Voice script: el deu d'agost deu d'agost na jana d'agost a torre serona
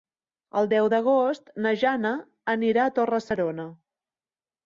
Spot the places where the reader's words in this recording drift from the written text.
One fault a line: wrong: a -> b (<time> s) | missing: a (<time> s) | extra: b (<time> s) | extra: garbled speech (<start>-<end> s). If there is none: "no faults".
missing: deu d'agost (1.5 s)
wrong: d'agost -> anirà (2.5 s)